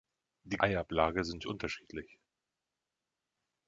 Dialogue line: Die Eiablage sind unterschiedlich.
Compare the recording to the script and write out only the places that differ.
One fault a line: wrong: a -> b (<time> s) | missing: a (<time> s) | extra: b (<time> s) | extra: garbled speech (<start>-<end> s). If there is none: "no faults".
no faults